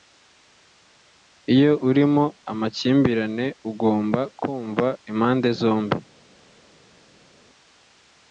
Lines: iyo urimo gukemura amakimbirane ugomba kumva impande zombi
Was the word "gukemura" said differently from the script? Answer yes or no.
yes